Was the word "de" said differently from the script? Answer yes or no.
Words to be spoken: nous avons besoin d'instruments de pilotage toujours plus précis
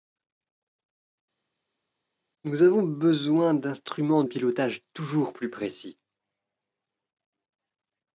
yes